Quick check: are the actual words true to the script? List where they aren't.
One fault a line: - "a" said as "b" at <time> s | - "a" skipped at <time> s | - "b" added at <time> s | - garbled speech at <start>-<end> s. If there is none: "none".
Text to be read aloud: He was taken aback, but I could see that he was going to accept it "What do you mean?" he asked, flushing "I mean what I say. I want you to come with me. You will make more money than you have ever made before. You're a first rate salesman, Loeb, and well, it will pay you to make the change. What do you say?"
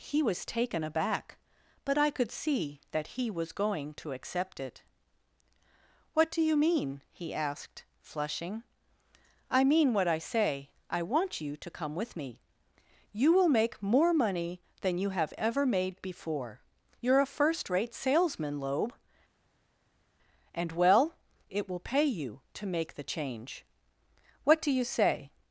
none